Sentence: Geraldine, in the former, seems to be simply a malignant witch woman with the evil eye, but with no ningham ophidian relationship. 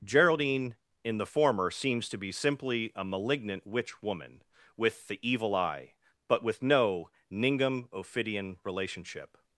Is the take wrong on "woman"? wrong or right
right